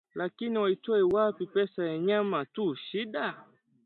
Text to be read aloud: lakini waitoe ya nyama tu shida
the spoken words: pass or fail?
fail